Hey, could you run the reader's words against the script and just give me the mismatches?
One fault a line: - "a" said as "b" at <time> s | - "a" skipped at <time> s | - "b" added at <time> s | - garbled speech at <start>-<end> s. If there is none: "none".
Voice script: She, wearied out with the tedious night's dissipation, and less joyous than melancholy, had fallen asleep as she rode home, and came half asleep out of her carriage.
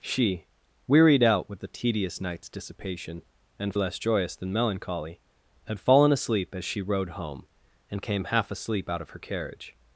none